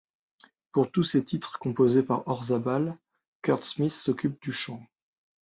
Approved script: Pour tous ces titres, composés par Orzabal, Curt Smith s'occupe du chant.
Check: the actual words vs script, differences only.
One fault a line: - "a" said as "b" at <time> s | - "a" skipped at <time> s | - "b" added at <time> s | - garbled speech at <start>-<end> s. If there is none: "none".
none